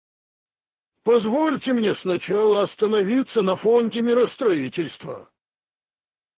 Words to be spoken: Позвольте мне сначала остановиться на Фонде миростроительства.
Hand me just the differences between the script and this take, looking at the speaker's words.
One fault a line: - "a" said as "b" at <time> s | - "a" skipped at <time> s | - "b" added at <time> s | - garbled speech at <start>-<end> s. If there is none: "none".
none